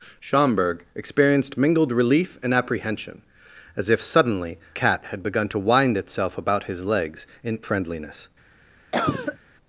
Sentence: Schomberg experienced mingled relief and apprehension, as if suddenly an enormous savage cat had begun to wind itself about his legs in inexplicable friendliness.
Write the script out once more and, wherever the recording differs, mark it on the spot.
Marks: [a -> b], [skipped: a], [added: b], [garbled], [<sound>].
Schomberg experienced mingled relief and apprehension, as if suddenly [skipped: an enormous savage] cat had begun to wind itself about his legs in [skipped: inexplicable] friendliness. [cough]